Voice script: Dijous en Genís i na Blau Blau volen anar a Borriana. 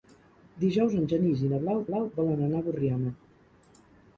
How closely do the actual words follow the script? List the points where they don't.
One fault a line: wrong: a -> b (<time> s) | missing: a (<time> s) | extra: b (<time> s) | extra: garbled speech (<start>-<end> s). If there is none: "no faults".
no faults